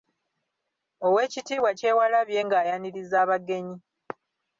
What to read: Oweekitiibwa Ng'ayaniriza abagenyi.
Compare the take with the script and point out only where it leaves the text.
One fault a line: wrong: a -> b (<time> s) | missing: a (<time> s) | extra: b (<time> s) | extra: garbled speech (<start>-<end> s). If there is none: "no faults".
extra: Kyewalabye (1.8 s)